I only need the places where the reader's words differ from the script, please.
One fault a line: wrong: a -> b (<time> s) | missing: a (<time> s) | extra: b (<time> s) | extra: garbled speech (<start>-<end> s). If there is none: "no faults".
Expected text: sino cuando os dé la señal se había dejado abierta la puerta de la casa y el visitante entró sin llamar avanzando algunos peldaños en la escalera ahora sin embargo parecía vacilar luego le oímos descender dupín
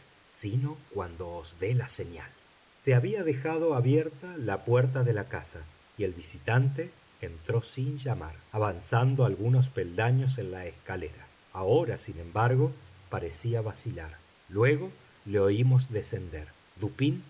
no faults